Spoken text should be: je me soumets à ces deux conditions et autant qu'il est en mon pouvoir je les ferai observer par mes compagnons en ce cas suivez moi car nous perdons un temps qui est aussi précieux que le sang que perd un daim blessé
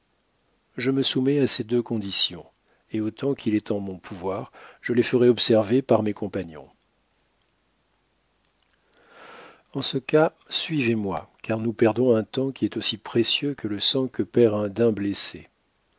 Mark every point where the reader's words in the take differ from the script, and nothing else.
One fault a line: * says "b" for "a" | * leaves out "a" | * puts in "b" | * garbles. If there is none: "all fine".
all fine